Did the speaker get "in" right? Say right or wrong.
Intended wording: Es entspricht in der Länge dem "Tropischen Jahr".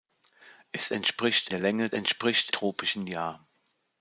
wrong